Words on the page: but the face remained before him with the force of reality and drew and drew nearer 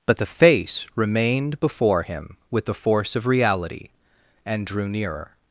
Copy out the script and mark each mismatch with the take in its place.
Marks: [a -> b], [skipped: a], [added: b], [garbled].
but the face remained before him with the force of reality and drew [skipped: and drew] nearer